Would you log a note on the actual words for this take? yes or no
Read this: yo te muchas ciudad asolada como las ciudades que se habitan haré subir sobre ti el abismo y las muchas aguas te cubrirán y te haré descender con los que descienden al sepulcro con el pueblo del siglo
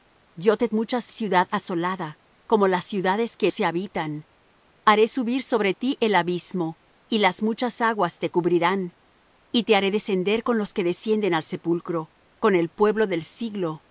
no